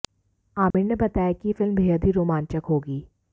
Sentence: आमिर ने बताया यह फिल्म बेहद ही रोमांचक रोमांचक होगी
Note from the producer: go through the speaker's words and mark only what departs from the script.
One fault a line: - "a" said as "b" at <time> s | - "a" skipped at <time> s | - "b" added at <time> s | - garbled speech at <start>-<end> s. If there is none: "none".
- "कि" added at 1.3 s
- "रोमांचक" skipped at 2.6 s